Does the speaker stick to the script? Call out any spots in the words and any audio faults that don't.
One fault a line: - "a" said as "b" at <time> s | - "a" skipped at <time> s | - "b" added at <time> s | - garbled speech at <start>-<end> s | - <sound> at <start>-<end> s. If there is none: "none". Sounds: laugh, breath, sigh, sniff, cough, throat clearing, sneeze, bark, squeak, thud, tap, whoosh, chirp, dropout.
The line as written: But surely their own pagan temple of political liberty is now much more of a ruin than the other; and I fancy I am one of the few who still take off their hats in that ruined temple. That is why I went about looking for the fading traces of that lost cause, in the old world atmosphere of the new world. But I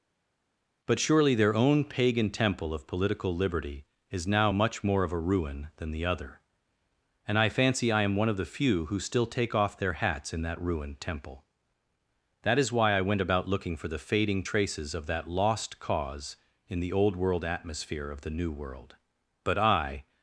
none